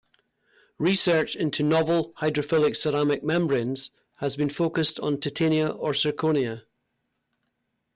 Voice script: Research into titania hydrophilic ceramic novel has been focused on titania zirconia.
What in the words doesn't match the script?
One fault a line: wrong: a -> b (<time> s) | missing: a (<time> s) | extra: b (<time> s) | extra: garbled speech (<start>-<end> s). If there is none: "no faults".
wrong: titania -> novel (1.6 s)
wrong: novel -> membranes (3.2 s)
extra: or (5.7 s)